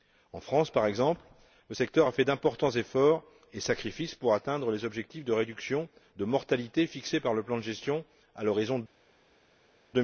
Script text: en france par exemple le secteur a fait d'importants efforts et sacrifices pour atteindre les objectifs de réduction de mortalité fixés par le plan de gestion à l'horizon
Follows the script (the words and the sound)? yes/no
yes